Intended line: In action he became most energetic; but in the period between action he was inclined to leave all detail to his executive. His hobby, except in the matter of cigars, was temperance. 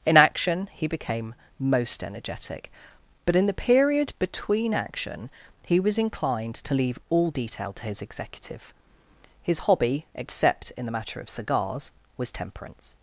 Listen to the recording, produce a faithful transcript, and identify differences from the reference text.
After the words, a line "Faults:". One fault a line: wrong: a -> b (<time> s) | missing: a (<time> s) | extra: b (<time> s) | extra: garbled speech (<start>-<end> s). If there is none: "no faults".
In action he became most energetic; but in the period between action he was inclined to leave all detail to his executive. His hobby, except in the matter of cigars, was temperance.
Faults:
no faults